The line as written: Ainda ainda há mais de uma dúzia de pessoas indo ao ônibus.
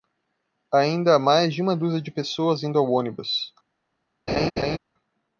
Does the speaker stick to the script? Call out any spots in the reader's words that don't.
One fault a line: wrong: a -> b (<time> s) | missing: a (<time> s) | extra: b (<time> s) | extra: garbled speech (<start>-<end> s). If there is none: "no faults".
missing: ainda (1.1 s)